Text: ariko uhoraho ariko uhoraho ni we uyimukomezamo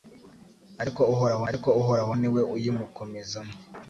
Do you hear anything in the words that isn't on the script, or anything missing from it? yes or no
no